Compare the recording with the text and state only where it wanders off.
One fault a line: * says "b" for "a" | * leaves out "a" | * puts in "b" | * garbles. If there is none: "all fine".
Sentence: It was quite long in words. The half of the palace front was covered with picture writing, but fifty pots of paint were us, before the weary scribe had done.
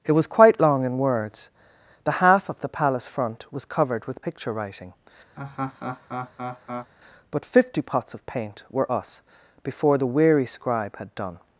all fine